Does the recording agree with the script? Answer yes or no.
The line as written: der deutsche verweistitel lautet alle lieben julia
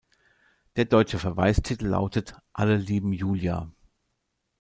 yes